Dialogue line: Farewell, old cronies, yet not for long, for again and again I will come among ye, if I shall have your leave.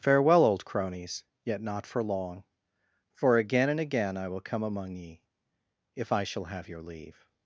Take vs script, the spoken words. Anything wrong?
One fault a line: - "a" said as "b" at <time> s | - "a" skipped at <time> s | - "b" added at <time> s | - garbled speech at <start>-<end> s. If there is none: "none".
none